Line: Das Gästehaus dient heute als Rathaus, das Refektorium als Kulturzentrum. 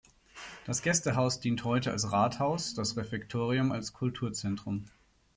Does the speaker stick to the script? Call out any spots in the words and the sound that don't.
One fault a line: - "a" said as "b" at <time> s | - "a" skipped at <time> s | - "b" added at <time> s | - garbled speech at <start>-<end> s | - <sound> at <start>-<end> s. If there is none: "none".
none